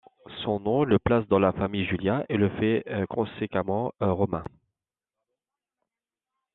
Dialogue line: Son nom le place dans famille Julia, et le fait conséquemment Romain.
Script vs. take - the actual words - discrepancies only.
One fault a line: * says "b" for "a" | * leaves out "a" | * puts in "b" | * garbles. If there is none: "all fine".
* puts in "la"